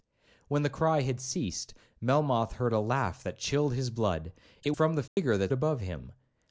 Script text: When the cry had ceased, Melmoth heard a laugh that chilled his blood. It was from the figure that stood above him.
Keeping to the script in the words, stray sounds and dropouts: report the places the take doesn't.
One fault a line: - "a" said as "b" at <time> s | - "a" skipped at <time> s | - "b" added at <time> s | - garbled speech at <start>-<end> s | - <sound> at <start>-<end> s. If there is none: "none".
- "was" skipped at 4.7 s
- dropout at 5.1-5.2 s
- "stood" skipped at 5.5 s